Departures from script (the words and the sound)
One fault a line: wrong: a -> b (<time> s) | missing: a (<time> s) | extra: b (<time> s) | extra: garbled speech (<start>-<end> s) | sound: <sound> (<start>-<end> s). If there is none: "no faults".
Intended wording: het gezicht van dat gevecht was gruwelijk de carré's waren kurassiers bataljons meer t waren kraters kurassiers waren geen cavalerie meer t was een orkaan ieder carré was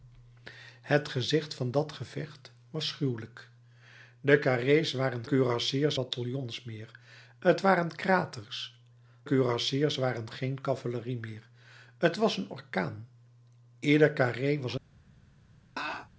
sound: laugh (15.8-16.1 s)